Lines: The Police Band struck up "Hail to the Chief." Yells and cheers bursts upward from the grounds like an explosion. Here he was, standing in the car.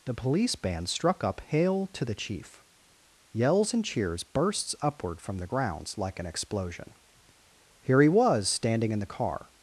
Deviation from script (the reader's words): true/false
false